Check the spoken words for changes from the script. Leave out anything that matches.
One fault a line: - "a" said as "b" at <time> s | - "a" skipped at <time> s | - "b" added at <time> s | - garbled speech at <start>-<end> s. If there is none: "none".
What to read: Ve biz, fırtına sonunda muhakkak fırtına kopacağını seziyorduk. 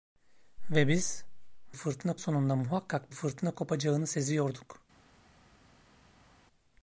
none